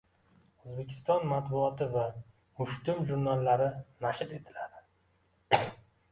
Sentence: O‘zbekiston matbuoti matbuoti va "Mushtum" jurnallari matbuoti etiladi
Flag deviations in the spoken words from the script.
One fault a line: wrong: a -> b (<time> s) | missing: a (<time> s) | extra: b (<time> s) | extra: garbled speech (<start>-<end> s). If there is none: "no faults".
missing: matbuoti (1.9 s)
wrong: matbuoti -> nashr (4.1 s)